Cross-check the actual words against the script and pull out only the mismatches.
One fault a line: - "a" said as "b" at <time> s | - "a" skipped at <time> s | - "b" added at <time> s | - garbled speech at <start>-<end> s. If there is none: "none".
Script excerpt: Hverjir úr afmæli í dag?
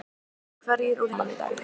none